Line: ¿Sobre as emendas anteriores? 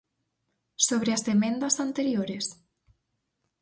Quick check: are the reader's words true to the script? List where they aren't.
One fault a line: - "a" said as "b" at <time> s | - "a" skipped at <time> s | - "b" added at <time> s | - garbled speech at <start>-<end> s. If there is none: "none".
none